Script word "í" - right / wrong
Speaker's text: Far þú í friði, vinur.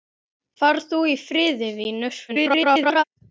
right